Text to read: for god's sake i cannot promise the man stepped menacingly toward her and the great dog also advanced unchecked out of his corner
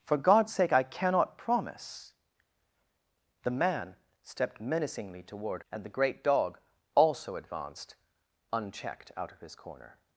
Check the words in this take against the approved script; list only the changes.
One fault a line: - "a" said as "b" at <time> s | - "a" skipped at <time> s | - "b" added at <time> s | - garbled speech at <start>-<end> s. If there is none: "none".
- "her" skipped at 5.6 s